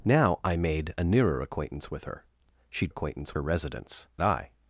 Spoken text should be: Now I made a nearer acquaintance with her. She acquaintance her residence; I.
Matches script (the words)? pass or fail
pass